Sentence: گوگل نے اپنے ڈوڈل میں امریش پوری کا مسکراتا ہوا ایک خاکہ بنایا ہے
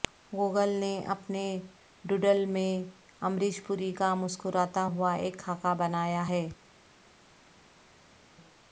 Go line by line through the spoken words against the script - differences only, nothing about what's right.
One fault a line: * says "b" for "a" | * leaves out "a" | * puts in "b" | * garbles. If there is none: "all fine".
all fine